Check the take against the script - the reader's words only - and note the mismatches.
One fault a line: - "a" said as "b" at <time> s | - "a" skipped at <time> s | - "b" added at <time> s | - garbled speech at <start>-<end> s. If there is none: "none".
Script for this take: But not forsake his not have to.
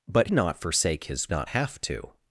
none